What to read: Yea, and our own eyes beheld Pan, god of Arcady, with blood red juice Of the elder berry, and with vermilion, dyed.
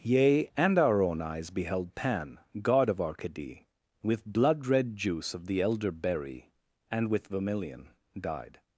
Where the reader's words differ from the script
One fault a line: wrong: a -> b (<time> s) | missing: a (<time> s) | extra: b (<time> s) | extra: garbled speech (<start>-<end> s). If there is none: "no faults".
no faults